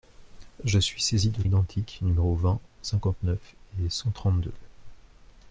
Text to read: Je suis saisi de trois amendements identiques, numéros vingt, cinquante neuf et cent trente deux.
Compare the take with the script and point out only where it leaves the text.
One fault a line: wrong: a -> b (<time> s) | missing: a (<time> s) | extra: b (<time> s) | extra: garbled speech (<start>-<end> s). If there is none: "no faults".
missing: trois amendements (1.4 s)